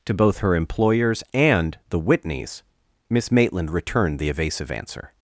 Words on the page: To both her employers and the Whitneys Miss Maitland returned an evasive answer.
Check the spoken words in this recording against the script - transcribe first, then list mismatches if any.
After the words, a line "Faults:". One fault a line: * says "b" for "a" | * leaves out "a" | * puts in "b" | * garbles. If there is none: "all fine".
To both her employers and the Whitneys Miss Maitland returned the evasive answer.
Faults:
* says "the" for "an"